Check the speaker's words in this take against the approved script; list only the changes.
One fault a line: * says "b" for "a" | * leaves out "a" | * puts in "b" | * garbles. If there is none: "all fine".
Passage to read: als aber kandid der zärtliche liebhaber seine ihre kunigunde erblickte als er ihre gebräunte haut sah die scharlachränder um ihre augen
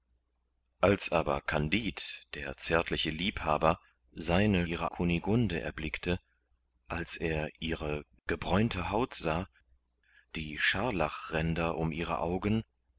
all fine